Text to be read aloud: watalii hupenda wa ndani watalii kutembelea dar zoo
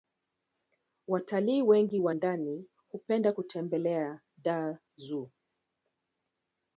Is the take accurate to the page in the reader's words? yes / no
no